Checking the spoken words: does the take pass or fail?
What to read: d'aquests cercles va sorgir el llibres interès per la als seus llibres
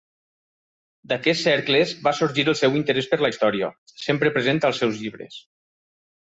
fail